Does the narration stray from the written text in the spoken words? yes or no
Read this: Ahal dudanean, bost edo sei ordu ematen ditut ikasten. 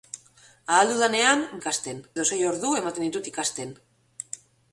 yes